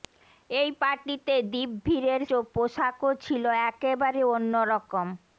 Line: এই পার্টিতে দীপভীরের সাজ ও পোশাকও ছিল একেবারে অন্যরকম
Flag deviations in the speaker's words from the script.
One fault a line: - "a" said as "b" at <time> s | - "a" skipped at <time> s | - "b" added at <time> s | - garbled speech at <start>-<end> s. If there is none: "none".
- "সাজ" skipped at 2.2 s